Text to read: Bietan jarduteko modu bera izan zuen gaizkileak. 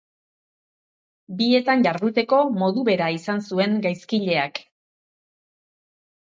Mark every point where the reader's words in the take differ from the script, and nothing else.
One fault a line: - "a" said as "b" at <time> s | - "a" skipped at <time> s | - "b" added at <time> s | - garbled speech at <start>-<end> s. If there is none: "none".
none